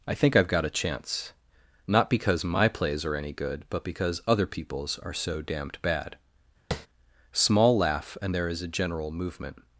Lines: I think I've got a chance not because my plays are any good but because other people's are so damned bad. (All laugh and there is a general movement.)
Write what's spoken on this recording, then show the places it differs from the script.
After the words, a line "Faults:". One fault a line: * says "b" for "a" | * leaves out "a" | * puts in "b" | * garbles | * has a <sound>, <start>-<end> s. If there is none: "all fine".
I think I've got a chance not because my plays are any good but because other people's are so damned bad. (Small laugh and there is a general movement.)
Faults:
* has a tap, 6.7-6.9 s
* says "Small" for "All"